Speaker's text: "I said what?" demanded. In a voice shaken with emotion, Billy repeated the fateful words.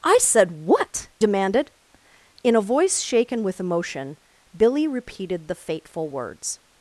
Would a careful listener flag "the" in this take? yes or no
no